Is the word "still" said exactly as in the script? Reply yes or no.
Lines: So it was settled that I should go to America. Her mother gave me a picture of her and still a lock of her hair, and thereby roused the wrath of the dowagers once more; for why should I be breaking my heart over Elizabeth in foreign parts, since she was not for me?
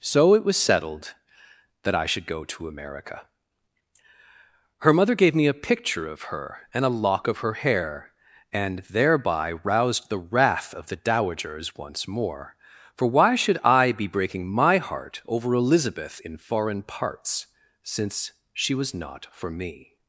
no